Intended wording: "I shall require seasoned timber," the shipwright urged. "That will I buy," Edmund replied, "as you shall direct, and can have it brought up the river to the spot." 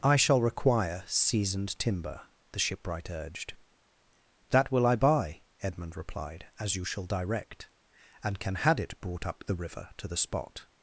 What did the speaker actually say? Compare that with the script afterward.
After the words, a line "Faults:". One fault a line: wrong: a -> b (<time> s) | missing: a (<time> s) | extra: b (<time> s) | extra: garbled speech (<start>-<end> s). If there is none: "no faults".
"I shall require seasoned timber," the shipwright urged. "That will I buy," Edmund replied, "as you shall direct, and can had it brought up the river to the spot."
Faults:
wrong: have -> had (8.5 s)